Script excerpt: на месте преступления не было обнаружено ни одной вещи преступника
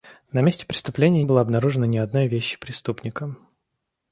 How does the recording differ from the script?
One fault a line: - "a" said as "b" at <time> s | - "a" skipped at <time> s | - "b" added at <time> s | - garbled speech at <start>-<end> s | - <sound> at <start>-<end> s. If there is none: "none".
- "не" skipped at 1.2 s